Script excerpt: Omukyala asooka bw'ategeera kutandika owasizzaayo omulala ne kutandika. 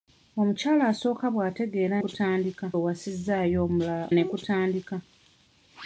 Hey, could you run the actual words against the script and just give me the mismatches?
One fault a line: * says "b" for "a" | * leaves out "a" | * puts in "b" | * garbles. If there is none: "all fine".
all fine